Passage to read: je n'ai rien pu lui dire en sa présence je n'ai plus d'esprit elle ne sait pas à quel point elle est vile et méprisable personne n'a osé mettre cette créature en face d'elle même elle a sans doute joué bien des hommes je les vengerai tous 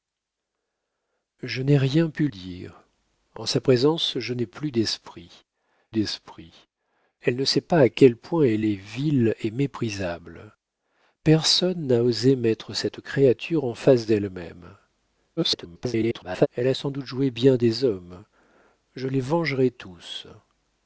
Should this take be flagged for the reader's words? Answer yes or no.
yes